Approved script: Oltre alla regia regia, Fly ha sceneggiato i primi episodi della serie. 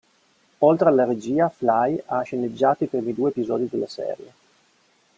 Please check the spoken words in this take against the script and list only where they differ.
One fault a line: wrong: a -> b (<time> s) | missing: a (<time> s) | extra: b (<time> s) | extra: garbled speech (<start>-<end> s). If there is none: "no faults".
missing: regia (1.5 s)
extra: due (3.1 s)